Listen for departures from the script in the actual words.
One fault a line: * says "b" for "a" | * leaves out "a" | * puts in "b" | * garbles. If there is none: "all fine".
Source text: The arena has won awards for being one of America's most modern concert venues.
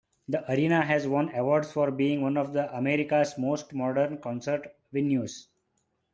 all fine